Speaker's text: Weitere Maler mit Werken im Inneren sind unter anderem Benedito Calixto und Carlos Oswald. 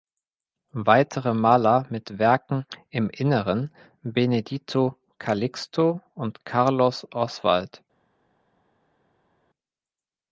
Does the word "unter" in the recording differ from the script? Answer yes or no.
yes